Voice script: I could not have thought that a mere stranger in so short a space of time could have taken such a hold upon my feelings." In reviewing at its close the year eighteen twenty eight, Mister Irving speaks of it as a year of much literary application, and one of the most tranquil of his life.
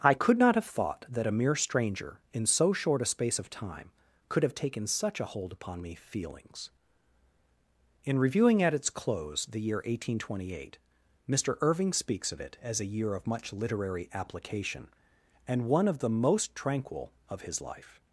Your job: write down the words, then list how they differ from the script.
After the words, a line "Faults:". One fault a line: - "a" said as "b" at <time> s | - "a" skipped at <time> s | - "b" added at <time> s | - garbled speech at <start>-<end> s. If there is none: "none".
I could not have thought that a mere stranger in so short a space of time could have taken such a hold upon me feelings." In reviewing at its close the year eighteen twenty eight, Mister Irving speaks of it as a year of much literary application, and one of the most tranquil of his life.
Faults:
- "my" said as "me" at 5.8 s